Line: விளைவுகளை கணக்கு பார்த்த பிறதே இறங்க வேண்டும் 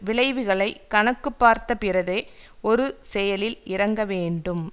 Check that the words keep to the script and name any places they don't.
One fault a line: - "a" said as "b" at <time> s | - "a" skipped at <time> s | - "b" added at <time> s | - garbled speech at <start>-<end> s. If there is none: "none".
- "ஒரு செயலில்" added at 2.6 s